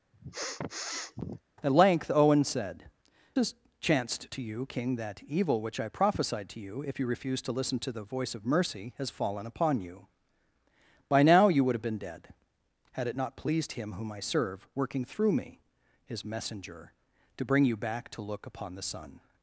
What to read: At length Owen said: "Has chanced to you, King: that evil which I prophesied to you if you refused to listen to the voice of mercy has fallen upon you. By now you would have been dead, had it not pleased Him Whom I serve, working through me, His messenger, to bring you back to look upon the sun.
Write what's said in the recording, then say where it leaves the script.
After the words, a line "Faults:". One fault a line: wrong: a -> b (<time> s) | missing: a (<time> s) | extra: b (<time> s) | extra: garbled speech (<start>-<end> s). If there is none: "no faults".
At length Owen said: "Has chanced to you, King: that evil which I prophesied to you if you refused to listen to the voice of mercy has fallen upon you. By now you would have been dead, had it not pleased Him Whom I serve, working through me, His messenger, to bring you back to look upon the sun.
Faults:
no faults